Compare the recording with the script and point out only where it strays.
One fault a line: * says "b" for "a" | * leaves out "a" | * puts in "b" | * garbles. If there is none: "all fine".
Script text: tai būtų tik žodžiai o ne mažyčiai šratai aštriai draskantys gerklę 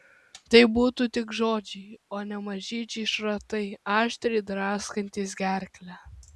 all fine